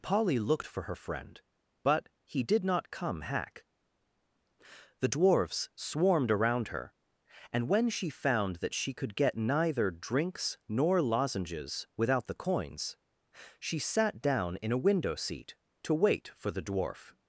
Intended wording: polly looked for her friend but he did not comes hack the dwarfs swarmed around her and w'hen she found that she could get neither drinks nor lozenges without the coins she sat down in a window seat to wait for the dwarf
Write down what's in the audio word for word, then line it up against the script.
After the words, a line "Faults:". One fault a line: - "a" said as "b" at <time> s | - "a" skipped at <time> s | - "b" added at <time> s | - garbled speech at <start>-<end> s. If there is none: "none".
polly looked for her friend but he did not come hack the dwarfs swarmed around her and w'hen she found that she could get neither drinks nor lozenges without the coins she sat down in a window seat to wait for the dwarf
Faults:
- "comes" said as "come" at 2.9 s